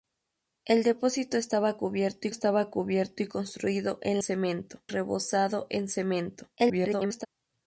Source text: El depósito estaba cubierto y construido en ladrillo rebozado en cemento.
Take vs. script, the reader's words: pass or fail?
fail